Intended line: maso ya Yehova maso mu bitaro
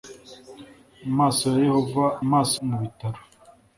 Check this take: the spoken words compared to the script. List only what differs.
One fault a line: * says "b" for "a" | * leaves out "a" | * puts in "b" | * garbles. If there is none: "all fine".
all fine